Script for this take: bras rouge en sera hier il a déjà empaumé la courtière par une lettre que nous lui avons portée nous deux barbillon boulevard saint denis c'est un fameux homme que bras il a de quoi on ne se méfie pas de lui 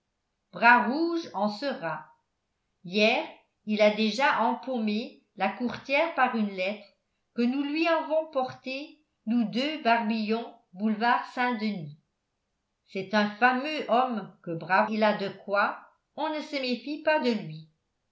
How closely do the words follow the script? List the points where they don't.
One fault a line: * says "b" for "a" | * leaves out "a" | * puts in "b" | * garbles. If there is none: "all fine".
all fine